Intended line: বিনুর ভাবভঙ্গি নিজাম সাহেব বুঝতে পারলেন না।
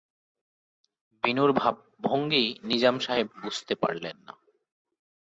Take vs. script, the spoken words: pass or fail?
pass